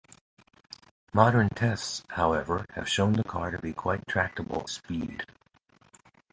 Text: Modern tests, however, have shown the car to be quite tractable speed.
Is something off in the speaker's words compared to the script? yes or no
no